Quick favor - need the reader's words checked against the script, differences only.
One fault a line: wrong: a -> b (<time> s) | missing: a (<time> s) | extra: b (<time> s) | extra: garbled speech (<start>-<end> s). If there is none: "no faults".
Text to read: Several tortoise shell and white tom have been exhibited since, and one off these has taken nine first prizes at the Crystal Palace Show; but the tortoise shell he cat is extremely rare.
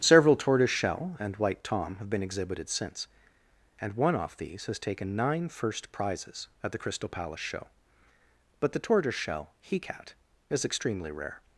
no faults